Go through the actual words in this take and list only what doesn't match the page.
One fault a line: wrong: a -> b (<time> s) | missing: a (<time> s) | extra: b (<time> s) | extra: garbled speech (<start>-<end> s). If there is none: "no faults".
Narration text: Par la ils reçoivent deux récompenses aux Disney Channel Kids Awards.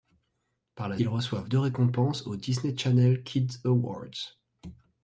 no faults